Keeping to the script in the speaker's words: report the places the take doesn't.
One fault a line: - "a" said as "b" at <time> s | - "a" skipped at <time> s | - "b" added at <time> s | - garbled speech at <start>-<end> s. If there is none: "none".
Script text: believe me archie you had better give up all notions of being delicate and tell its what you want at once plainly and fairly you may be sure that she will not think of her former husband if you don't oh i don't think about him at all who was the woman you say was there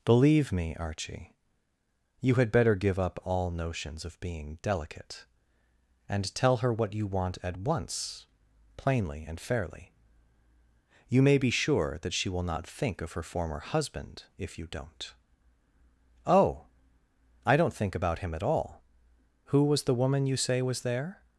- "its" said as "her" at 6.6 s